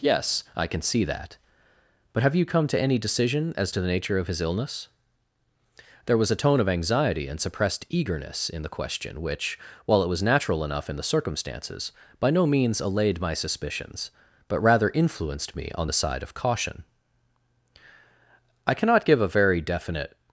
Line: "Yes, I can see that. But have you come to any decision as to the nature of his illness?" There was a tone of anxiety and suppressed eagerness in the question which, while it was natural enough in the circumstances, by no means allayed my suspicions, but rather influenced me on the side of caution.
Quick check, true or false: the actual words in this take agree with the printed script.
false